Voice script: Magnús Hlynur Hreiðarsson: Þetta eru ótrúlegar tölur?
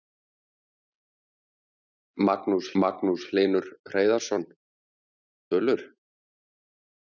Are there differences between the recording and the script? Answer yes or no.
yes